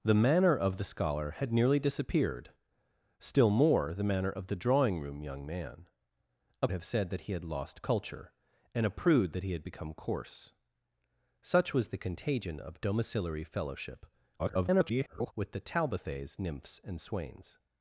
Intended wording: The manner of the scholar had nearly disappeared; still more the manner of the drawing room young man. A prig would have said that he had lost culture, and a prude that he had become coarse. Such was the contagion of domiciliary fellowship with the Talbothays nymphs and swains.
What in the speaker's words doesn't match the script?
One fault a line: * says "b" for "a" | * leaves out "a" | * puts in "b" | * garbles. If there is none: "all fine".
* leaves out "prig would"
* garbles